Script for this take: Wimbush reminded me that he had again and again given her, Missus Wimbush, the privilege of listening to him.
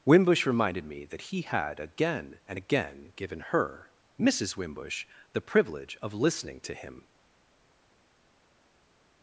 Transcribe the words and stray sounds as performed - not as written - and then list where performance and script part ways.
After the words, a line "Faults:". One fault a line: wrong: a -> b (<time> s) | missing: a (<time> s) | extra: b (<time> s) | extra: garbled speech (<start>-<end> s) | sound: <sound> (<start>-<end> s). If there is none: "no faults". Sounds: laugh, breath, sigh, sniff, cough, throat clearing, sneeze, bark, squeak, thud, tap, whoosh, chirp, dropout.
Wimbush reminded me that he had again and again given her, Missus Wimbush, the privilege of listening to him.
Faults:
no faults